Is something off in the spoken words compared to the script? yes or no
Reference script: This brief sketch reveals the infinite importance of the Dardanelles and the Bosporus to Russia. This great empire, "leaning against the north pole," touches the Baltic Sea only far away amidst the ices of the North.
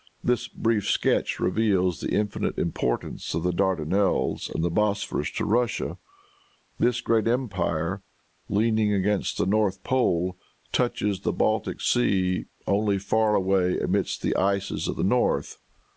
no